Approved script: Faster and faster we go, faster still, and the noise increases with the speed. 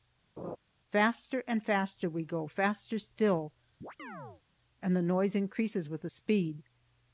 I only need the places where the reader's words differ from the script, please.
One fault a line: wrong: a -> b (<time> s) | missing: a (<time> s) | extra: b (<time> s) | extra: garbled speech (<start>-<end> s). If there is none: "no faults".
no faults